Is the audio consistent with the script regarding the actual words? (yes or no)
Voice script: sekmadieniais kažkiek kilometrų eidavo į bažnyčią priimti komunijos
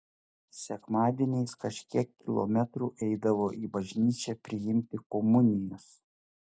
yes